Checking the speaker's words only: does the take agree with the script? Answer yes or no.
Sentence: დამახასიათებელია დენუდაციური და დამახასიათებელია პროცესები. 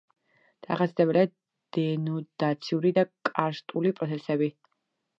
no